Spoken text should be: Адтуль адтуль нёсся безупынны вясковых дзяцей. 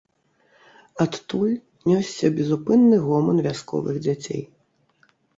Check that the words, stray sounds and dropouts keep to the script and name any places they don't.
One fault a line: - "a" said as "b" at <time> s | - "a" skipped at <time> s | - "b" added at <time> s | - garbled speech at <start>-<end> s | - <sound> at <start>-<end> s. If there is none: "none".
- "адтуль" skipped at 1.5 s
- "гоман" added at 3.1 s